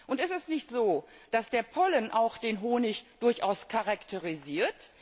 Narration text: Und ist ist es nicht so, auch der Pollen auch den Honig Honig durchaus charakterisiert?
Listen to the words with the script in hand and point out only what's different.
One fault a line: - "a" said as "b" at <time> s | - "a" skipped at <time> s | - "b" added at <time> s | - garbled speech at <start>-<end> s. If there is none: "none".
- "ist" skipped at 0.3 s
- "auch" said as "dass" at 1.3 s
- "Honig" skipped at 3.0 s